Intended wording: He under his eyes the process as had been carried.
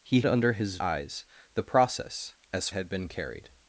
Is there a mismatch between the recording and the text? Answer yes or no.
no